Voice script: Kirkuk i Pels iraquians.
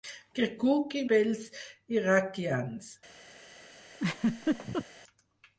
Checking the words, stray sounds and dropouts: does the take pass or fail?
fail